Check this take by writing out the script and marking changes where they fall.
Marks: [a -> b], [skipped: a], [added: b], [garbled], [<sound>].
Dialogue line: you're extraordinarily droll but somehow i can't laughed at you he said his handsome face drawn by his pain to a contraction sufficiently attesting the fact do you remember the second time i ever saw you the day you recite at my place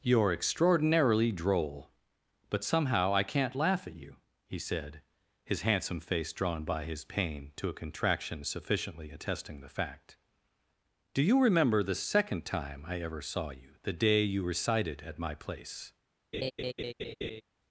you're extraordinarily droll but somehow i can't [laughed -> laugh] at you he said his handsome face drawn by his pain to a contraction sufficiently attesting the fact do you remember the second time i ever saw you the day you [recite -> recited] at my place [laugh]